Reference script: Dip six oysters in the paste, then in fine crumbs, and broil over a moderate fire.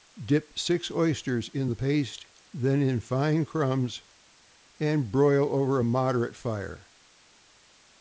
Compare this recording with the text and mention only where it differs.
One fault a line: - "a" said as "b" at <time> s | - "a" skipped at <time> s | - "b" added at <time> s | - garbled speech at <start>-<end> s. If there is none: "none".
none